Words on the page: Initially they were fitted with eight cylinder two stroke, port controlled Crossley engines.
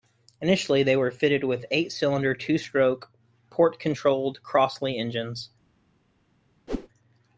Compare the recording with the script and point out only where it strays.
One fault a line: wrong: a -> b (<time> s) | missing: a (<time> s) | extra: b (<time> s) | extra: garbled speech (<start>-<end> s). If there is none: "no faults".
no faults